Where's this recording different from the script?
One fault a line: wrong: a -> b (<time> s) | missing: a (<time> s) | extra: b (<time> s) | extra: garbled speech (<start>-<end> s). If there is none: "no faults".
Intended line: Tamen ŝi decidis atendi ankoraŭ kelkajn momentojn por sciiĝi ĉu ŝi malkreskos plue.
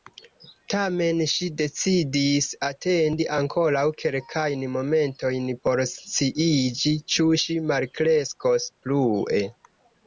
no faults